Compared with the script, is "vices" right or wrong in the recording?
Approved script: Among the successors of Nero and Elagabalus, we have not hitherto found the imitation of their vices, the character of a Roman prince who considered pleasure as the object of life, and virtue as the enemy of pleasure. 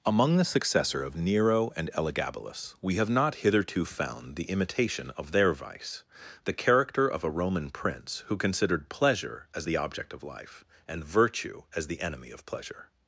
wrong